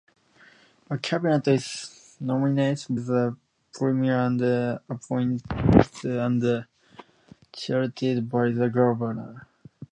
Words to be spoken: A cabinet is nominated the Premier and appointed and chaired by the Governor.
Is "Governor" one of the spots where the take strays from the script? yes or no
no